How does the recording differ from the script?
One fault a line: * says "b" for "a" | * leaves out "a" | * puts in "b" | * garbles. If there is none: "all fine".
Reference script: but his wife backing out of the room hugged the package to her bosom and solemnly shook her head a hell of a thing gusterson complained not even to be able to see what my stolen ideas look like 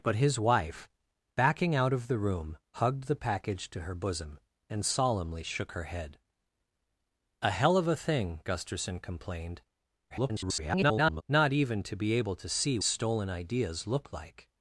* garbles
* leaves out "what my"